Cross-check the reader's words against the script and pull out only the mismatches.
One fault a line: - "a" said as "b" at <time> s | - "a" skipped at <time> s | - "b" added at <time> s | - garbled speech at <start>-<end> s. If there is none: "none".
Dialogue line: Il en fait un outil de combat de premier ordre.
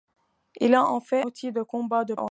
- "un" skipped at 1.2 s
- "premier" skipped at 2.1 s